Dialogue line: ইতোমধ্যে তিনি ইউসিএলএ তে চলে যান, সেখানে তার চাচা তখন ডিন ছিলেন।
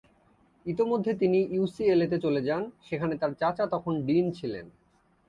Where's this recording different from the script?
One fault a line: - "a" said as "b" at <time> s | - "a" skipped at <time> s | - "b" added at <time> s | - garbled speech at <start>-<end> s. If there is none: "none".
none